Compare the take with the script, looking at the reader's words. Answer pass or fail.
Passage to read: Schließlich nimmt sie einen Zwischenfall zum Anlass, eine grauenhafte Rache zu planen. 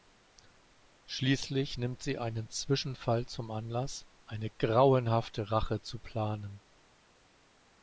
pass